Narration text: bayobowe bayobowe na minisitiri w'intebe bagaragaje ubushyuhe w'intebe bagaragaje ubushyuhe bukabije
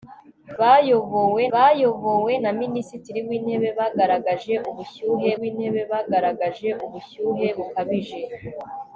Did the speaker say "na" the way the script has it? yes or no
yes